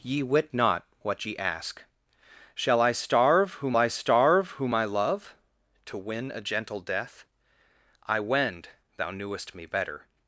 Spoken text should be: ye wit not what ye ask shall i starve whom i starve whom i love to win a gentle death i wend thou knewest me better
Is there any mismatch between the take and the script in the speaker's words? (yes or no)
no